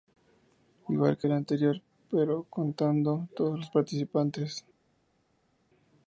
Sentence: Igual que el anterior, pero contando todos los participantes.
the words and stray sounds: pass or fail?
pass